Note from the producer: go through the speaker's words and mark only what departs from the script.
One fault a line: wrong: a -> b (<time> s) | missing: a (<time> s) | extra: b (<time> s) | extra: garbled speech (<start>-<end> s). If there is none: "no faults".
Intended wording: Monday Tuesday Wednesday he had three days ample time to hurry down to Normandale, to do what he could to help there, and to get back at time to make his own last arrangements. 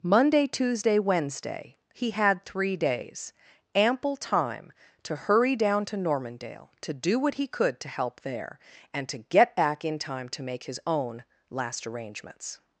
wrong: at -> in (9.8 s)